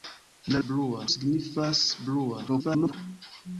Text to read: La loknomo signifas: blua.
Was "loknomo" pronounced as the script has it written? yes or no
no